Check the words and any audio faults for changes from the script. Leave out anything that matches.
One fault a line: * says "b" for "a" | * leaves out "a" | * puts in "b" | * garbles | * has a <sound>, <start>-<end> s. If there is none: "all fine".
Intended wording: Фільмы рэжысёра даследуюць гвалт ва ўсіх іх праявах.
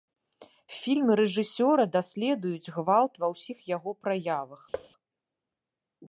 * says "яго" for "іх"
* has a thud, 4.7-4.9 s